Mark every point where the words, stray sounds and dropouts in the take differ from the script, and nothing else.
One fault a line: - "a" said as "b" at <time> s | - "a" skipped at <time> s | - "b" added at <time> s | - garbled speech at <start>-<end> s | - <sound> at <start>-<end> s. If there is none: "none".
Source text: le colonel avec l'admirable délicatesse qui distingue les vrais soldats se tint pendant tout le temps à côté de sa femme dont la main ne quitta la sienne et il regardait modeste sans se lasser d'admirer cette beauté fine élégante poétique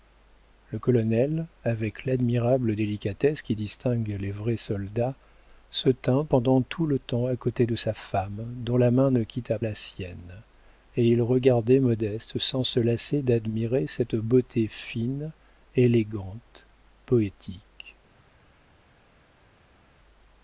none